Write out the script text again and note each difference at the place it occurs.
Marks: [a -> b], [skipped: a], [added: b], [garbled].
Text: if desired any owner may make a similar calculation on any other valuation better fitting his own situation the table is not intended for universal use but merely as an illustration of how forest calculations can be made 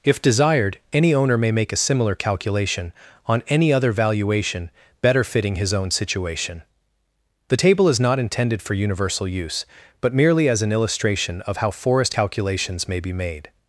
if desired any owner may make a similar calculation on any other valuation better fitting his own situation the table is not intended for universal use but merely as an illustration of how forest calculations [can -> may] be made